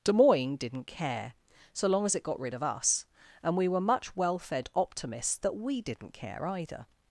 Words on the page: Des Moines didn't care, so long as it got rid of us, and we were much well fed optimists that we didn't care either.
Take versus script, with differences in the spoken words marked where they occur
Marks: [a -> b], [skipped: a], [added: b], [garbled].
Des Moines didn't care, so long as it got rid of us, and we were much well fed optimists that we didn't care either.